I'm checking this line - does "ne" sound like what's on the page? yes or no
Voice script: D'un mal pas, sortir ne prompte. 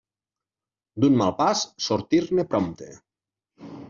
yes